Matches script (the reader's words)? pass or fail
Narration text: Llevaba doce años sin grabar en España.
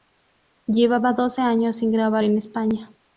pass